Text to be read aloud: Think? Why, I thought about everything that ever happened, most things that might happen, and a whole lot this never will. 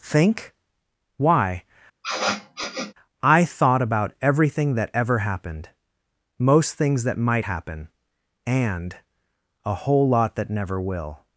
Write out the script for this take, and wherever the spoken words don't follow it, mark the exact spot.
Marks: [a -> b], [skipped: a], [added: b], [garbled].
Think? Why, I thought about everything that ever happened, most things that might happen, and a whole lot [this -> that] never will.